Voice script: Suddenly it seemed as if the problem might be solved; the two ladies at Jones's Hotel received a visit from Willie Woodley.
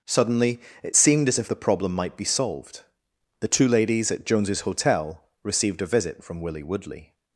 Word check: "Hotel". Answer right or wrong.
right